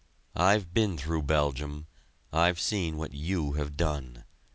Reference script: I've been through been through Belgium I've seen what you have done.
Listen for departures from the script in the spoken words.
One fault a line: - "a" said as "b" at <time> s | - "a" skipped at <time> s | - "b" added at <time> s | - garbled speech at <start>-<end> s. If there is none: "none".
- "been through" skipped at 1.2 s